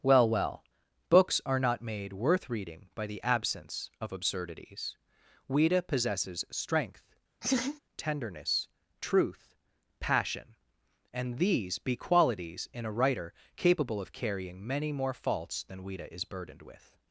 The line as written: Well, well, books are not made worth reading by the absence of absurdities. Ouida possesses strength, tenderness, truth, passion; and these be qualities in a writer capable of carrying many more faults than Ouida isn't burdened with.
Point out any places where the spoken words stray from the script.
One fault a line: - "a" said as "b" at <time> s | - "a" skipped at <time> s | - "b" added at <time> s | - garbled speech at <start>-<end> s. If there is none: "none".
- "isn't" said as "is" at 16.1 s